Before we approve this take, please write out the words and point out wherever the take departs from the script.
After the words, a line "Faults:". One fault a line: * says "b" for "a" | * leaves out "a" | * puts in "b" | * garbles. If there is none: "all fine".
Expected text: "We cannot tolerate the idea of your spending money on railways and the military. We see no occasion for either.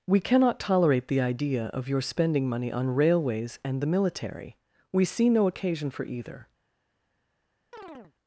"We cannot tolerate the idea of your spending money on railways and the military. We see no occasion for either.
Faults:
all fine